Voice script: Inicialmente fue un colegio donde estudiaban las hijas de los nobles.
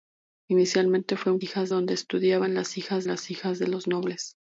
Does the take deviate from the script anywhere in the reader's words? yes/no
yes